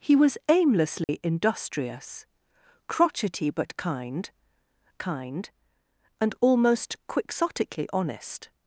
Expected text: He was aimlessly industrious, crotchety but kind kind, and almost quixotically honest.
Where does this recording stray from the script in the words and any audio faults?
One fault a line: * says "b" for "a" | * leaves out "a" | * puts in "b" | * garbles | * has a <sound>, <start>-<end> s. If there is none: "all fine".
* has a dropout, 1.0-1.1 s